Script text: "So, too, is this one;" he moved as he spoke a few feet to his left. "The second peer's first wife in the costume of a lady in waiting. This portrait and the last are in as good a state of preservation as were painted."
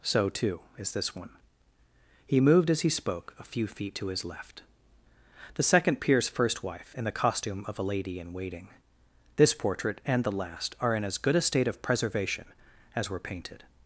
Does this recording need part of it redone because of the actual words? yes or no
no